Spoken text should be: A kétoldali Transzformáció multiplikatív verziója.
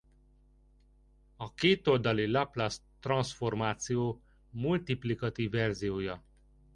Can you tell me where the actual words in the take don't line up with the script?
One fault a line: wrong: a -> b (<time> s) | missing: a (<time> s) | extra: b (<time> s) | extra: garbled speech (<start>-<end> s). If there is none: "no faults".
extra: Laplace (2.3 s)